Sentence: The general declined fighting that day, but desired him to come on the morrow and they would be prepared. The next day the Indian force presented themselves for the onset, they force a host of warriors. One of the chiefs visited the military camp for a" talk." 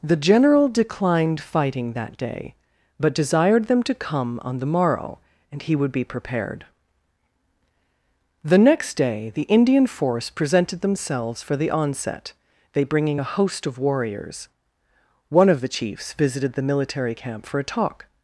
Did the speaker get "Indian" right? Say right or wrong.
right